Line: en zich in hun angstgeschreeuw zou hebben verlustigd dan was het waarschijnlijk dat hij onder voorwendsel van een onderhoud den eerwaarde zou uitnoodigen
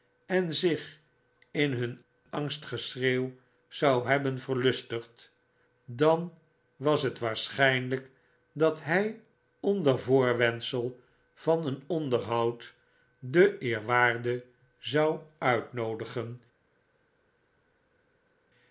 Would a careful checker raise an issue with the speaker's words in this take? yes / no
no